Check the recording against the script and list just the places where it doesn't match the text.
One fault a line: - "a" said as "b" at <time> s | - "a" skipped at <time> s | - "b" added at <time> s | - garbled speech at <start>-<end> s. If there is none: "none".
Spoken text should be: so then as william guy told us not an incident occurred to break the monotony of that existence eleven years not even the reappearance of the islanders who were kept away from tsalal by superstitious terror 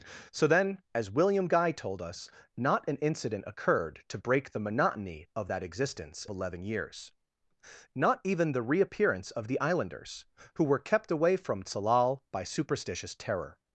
none